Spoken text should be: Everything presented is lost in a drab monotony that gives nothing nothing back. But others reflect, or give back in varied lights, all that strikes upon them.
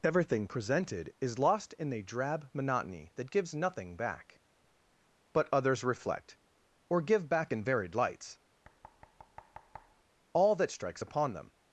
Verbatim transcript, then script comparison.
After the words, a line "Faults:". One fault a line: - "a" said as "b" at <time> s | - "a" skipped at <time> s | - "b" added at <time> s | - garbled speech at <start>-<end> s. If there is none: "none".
Everything presented is lost in a drab monotony that gives nothing back. But others reflect, or give back in varied lights, all that strikes upon them.
Faults:
- "nothing" skipped at 4.0 s